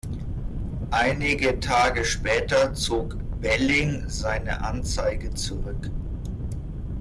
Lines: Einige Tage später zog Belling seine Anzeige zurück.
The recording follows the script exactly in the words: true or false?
true